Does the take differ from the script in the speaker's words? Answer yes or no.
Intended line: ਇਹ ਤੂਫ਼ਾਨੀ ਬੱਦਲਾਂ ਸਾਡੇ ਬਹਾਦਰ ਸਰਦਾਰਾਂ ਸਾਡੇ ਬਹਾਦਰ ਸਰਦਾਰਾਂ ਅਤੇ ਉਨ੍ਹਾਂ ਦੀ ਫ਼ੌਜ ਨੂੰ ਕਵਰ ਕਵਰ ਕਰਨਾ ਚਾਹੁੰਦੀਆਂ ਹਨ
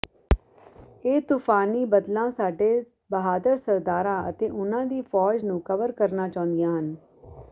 yes